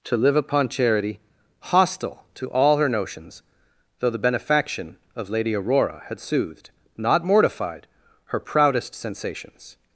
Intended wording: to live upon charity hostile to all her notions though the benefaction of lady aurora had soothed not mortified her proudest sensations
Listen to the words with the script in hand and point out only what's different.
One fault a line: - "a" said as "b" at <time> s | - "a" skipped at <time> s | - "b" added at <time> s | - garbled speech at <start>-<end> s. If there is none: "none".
none